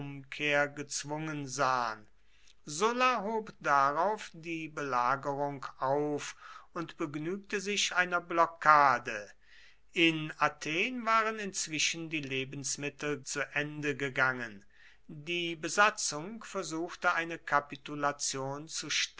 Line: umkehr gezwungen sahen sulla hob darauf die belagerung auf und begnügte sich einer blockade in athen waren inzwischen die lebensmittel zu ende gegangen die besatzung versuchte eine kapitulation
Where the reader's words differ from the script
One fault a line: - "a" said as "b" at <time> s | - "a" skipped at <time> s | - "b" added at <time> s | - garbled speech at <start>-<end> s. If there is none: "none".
none